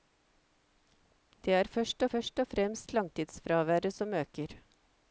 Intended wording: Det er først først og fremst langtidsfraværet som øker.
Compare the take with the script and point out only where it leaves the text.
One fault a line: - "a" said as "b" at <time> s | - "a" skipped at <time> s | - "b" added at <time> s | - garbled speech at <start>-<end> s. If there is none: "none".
none